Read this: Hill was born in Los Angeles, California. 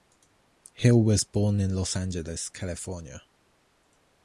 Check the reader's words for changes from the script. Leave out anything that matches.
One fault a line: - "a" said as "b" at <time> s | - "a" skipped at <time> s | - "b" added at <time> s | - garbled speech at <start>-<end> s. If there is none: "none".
none